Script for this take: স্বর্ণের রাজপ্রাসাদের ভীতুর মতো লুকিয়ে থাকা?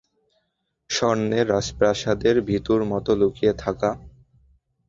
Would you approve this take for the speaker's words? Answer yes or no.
yes